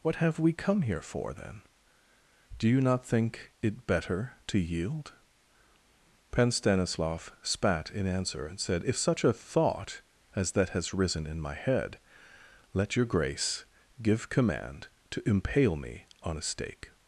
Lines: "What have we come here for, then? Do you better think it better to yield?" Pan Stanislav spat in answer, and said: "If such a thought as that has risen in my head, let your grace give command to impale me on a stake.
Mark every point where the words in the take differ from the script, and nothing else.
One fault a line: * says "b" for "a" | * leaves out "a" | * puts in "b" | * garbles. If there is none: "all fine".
* says "not" for "better"